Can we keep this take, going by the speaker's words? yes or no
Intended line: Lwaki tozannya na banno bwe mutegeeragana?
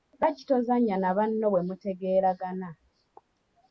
yes